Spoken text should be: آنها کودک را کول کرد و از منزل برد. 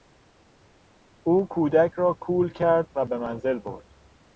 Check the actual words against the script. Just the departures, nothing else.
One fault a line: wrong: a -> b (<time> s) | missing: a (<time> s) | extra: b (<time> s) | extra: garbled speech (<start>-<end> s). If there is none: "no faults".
wrong: آنها -> او (1.2 s)
wrong: از -> به (3.0 s)